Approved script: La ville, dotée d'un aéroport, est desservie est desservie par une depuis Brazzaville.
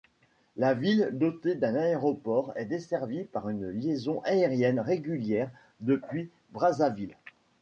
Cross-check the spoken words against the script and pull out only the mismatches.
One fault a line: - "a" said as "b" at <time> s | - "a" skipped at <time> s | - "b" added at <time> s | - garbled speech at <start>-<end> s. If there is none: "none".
- "est desservie par une" said as "par une liaison aérienne régulière" at 3.2 s